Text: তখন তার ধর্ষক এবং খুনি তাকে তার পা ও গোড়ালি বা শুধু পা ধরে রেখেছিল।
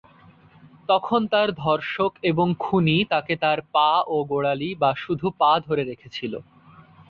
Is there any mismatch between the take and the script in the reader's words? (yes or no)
no